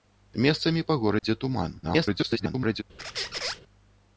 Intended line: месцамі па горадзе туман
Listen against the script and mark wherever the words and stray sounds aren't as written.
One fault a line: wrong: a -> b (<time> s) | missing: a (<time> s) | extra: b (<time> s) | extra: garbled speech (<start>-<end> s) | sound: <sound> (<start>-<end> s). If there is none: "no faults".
sound: dropout (1.2-1.2 s)
extra: garbled speech (1.8-2.8 s)
sound: squeak (3.0-3.6 s)